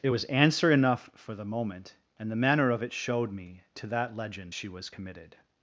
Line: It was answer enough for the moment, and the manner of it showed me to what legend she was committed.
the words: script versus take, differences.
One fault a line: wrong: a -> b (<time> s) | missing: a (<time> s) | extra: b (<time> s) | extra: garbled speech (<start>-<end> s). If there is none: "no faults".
wrong: what -> that (3.9 s)